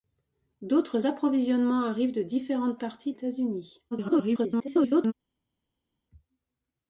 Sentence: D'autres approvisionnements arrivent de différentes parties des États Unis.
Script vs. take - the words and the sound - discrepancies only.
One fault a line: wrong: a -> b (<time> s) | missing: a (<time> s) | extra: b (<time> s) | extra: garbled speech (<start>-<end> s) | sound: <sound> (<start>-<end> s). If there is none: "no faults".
missing: des (3.1 s)
extra: garbled speech (3.9-5.1 s)